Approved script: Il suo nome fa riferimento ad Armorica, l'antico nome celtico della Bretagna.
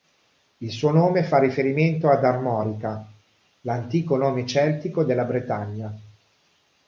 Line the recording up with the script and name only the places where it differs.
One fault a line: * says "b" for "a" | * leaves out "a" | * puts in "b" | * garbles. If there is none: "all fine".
all fine